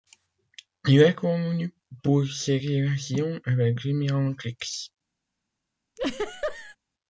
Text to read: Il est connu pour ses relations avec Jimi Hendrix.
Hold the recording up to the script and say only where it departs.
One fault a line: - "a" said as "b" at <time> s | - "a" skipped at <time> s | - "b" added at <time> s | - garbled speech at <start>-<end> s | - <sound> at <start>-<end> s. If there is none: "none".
- laugh at 6.0-6.8 s